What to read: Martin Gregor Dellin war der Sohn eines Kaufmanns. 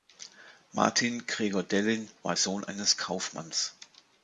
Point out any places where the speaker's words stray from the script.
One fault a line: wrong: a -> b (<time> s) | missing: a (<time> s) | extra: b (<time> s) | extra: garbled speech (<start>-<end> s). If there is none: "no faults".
missing: der (2.4 s)